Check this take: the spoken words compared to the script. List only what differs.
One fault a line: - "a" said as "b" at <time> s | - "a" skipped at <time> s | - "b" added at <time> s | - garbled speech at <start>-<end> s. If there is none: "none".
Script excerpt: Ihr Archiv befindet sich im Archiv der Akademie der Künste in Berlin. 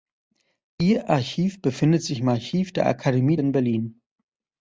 - "der Künste" skipped at 3.4 s